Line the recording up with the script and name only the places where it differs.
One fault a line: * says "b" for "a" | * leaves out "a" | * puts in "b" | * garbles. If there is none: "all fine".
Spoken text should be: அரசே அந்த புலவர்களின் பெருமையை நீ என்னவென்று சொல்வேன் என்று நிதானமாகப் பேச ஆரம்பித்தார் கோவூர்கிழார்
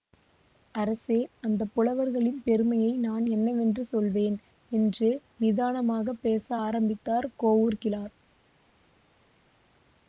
* says "நான்" for "நீ"